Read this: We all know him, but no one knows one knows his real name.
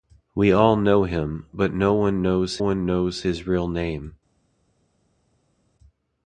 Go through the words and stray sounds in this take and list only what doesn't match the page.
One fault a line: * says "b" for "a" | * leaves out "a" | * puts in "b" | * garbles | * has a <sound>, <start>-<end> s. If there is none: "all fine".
all fine